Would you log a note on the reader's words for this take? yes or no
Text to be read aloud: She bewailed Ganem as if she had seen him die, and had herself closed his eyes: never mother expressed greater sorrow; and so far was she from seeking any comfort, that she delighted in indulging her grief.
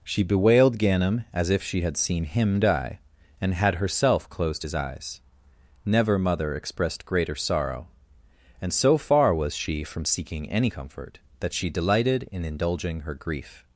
no